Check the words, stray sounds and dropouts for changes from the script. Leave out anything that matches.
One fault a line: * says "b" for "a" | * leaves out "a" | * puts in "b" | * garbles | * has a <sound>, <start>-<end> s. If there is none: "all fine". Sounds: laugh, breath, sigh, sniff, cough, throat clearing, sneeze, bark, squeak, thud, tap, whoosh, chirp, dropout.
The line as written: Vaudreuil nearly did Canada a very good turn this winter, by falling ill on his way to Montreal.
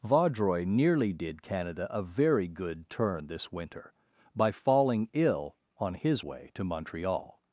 all fine